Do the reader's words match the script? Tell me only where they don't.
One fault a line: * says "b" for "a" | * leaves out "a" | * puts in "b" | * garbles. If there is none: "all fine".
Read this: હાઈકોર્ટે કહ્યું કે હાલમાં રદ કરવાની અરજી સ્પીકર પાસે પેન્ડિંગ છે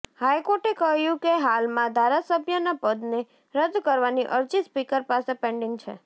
* puts in "ધારાસભ્યના પદને"